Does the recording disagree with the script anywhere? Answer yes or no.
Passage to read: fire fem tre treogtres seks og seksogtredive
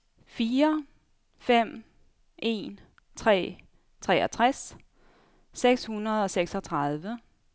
yes